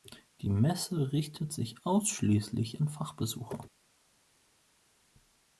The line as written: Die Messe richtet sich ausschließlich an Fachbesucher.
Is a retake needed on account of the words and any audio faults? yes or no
no